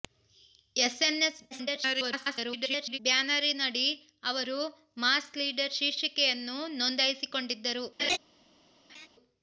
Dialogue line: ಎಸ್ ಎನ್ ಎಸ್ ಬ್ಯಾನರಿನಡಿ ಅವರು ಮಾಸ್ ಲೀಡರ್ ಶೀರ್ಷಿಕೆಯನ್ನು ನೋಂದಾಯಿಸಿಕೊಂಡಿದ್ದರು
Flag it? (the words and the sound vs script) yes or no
yes